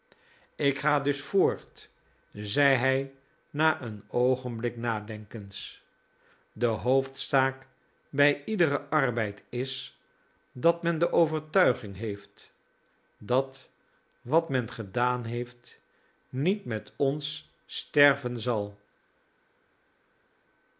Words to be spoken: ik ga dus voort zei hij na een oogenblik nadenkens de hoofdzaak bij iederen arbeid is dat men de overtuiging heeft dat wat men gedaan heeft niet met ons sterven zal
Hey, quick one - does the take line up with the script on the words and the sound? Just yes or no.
yes